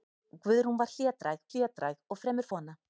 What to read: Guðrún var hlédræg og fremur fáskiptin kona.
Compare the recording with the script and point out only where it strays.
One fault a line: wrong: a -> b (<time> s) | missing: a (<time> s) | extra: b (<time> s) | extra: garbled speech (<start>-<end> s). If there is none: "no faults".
extra: hlédræg (1.5 s)
missing: fáskiptin (2.5 s)